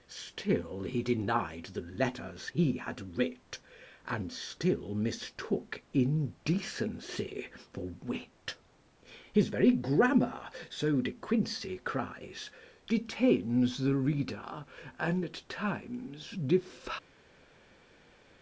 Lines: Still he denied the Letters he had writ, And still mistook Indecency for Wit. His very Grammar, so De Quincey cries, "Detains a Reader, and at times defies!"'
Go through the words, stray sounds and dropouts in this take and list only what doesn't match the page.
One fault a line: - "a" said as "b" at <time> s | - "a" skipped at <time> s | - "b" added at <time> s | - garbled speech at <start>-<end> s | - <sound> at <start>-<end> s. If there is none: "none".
- "a" said as "the" at 13.8 s